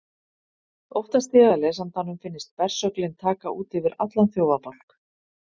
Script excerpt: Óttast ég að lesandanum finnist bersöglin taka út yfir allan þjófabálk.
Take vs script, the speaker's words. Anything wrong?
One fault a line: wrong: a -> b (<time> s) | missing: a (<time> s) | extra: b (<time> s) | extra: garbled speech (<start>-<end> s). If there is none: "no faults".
no faults